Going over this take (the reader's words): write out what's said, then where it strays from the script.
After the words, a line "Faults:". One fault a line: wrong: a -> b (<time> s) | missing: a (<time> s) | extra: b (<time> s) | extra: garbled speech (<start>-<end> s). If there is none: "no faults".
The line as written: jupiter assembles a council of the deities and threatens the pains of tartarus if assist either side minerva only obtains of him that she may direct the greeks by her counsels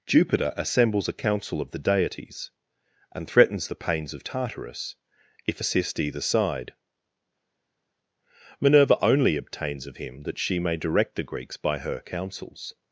jupiter assembles a council of the deities and threatens the pains of tartarus if assist either side minerva only obtains of him that she may direct the greeks by her counsels
Faults:
no faults